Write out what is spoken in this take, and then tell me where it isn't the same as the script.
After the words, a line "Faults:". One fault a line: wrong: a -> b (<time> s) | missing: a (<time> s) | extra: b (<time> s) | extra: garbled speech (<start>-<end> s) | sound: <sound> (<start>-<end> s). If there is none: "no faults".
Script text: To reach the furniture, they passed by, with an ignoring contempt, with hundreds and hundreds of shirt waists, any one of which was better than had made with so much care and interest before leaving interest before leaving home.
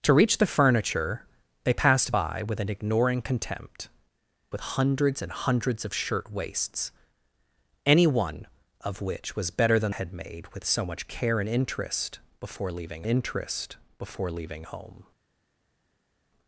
To reach the furniture, they passed by, with an ignoring contempt, with hundreds and hundreds of shirt waists, any one of which was better than had made with so much care and interest before leaving interest before leaving home.
Faults:
no faults